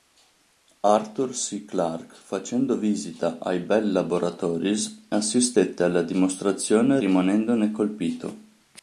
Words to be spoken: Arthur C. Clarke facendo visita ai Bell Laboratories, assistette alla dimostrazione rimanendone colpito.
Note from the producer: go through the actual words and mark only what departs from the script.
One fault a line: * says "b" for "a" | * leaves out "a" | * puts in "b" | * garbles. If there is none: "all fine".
all fine